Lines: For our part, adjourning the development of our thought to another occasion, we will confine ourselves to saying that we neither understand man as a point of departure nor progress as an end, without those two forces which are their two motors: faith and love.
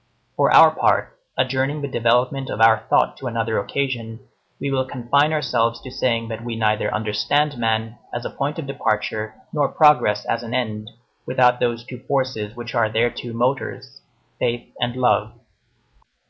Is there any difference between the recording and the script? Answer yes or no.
no